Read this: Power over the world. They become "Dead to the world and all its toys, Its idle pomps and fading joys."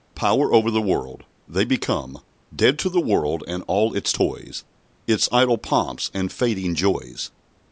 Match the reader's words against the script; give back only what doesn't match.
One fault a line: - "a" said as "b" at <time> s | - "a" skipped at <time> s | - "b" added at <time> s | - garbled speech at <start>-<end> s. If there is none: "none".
none